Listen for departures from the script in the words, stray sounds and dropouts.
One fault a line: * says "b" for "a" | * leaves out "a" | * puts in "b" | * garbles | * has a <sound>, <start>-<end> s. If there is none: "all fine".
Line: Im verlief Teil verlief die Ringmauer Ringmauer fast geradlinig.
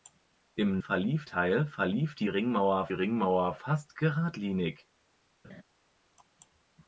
* has a laugh, 5.4-5.6 s